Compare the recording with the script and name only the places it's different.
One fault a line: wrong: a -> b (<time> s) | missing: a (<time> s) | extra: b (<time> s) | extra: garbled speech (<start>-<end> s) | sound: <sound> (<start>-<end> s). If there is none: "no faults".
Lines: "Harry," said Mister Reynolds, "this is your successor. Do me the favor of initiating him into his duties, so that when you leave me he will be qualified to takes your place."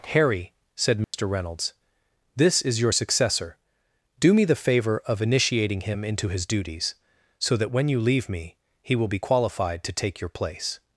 sound: dropout (1.0-1.1 s)
wrong: takes -> take (9.9 s)